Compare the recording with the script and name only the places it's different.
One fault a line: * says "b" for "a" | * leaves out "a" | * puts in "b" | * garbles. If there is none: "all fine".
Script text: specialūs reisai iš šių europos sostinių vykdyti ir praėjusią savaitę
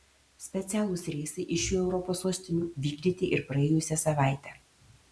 all fine